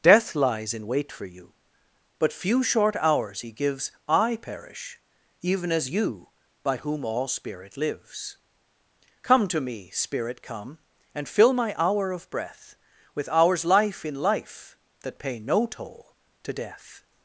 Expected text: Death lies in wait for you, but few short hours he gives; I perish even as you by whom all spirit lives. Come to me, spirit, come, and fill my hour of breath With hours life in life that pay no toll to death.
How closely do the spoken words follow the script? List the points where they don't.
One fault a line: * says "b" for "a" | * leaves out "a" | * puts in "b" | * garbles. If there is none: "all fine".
all fine